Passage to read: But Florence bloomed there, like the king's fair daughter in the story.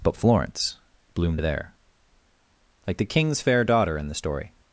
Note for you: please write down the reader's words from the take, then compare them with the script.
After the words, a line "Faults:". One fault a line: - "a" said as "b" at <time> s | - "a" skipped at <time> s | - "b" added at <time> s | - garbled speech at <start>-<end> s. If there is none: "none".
But Florence bloomed there, like the king's fair daughter in the story.
Faults:
none